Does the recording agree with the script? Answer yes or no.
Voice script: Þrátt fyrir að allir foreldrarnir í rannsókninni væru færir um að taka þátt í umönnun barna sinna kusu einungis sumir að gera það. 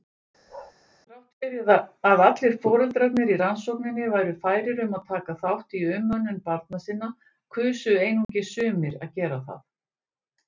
yes